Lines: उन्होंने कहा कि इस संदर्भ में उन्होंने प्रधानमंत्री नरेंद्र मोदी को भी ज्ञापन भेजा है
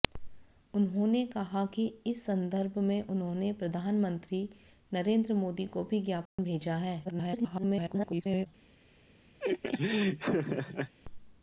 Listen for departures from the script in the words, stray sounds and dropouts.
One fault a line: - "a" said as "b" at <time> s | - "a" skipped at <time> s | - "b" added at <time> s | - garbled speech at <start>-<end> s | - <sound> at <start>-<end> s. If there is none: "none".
- dropout at 6.3-6.4 s
- garbled speech at 7.0-8.5 s
- laugh at 9.4-10.9 s